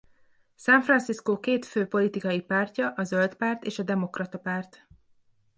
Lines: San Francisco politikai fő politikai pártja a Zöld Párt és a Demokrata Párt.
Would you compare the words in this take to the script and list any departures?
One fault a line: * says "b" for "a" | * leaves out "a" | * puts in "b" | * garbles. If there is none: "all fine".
* says "két" for "politikai"